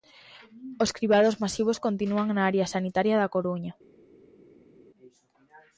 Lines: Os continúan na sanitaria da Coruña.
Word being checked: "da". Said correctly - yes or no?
yes